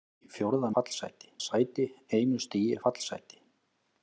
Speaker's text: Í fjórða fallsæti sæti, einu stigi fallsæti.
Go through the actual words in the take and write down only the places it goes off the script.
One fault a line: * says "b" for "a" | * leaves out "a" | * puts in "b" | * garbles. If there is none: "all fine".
all fine